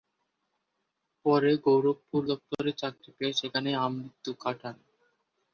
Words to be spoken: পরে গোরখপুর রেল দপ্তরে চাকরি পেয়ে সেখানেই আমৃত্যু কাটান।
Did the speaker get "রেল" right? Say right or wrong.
wrong